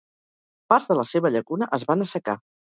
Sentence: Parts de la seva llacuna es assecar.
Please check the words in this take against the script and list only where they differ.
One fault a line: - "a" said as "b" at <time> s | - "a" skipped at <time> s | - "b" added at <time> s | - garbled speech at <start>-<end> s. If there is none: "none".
- "van" added at 1.9 s